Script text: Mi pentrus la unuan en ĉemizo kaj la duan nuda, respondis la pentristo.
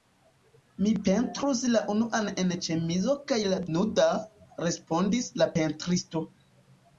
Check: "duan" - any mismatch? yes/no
yes